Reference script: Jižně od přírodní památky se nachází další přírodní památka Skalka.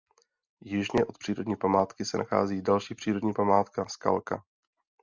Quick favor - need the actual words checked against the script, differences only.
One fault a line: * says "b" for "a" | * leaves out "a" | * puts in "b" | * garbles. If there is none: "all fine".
all fine